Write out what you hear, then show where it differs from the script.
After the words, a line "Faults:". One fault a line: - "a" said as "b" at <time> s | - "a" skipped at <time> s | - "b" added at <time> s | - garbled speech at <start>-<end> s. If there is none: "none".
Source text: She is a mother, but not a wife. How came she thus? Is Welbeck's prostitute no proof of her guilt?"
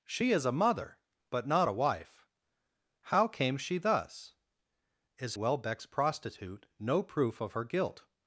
She is a mother, but not a wife. How came she thus? Is Welbeck's prostitute no proof of her guilt?"
Faults:
none